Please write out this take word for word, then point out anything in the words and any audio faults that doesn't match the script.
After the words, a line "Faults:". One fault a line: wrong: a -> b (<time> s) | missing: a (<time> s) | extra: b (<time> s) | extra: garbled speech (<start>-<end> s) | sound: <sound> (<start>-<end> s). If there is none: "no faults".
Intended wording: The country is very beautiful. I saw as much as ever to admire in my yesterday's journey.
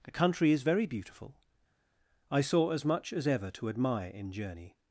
The country is very beautiful. I saw as much as ever to admire in journey.
Faults:
missing: my yesterday's (4.3 s)